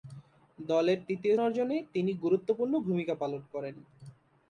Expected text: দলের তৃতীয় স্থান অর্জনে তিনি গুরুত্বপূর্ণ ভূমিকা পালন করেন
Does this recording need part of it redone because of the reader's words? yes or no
yes